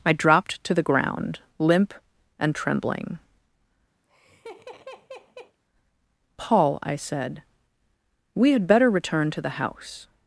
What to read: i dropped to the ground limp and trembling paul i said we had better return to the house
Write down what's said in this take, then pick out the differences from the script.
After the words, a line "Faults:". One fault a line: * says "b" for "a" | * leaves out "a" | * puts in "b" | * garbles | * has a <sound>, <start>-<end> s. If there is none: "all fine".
i dropped to the ground limp and trembling paul i said we had better return to the house
Faults:
* has a laugh, 4.0-5.6 s